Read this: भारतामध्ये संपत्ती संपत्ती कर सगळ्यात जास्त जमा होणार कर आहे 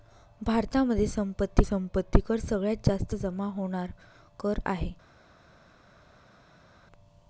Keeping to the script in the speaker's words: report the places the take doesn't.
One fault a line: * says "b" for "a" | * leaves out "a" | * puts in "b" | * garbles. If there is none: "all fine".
all fine